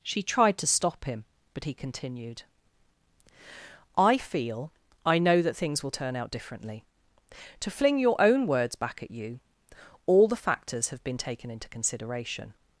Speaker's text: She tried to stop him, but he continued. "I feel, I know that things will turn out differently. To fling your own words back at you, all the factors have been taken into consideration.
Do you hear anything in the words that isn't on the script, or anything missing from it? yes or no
no